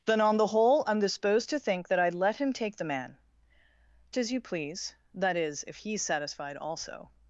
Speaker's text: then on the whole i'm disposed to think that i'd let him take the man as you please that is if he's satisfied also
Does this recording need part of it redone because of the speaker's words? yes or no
no